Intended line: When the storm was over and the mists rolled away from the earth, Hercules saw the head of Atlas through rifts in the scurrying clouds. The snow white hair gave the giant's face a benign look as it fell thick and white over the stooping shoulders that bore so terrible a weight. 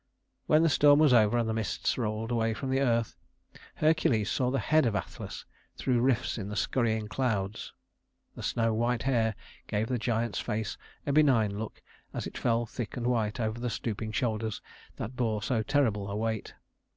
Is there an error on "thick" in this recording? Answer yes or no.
no